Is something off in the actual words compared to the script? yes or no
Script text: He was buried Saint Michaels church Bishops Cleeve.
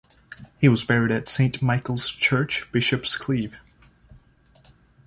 yes